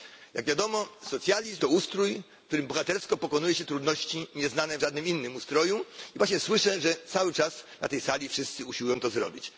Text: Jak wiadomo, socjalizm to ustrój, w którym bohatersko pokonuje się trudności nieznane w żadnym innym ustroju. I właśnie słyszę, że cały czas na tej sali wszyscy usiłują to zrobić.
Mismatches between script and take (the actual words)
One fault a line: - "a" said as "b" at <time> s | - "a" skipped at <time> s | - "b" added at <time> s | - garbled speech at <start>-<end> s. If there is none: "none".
none